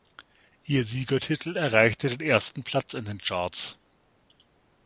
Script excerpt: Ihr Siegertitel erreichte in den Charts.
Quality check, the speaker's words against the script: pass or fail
fail